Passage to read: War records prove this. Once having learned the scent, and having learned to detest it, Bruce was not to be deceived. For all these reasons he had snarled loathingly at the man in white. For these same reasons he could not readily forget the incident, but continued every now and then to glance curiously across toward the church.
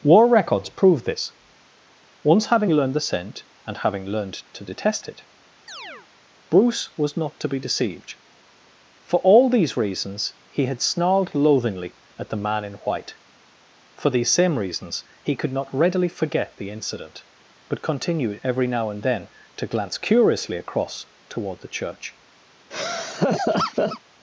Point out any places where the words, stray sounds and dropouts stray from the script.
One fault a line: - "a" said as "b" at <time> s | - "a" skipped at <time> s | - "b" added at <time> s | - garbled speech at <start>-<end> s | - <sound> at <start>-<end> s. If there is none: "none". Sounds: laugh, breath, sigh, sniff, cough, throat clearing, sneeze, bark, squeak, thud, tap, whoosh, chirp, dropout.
- chirp at 5.7-6.1 s
- laugh at 22.7-24.0 s